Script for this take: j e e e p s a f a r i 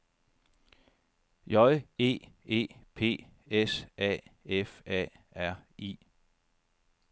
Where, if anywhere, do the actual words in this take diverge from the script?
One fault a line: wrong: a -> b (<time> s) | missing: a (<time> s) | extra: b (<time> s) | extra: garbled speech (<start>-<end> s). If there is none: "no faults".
missing: e (2.7 s)